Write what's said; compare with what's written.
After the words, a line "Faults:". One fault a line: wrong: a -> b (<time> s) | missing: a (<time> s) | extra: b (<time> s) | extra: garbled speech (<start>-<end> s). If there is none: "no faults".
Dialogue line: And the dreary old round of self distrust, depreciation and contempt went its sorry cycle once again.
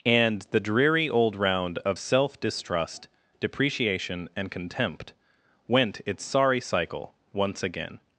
And the dreary old round of self distrust, depreciation and contempt went its sorry cycle once again.
Faults:
no faults